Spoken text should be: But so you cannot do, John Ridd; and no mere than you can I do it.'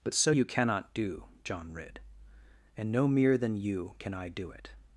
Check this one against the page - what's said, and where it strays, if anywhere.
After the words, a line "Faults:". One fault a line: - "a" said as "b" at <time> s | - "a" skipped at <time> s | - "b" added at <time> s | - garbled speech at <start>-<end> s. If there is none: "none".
But so you cannot do, John Ridd; and no mere than you can I do it.'
Faults:
none